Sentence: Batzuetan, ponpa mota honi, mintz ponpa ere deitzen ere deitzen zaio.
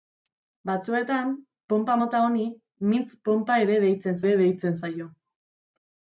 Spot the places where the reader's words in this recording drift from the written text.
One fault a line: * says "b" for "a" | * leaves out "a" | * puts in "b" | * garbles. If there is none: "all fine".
all fine